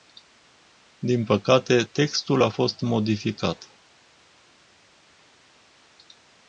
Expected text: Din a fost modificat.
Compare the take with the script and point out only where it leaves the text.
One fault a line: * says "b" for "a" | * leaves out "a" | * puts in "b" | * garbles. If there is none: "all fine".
* puts in "păcate textul"